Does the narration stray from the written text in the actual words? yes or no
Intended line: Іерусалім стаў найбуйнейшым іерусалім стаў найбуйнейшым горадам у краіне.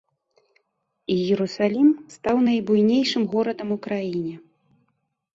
yes